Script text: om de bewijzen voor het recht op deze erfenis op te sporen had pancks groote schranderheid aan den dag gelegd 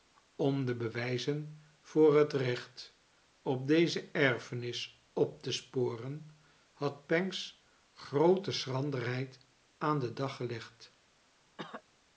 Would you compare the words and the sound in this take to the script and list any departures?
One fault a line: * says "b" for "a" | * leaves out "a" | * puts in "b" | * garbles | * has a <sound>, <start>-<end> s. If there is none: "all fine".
* has a cough, 11.6-11.8 s